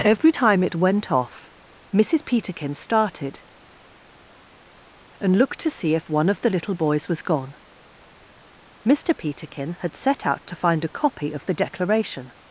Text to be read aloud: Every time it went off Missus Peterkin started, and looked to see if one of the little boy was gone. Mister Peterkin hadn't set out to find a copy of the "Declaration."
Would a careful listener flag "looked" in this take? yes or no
no